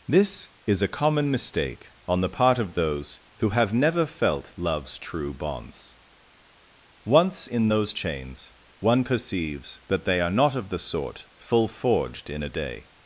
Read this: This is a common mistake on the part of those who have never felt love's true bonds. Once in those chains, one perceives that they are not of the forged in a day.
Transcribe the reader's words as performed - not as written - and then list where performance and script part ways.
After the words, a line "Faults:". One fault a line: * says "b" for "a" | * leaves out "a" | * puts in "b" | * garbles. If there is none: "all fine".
This is a common mistake on the part of those who have never felt love's true bonds. Once in those chains, one perceives that they are not of the sort full forged in a day.
Faults:
* puts in "sort full"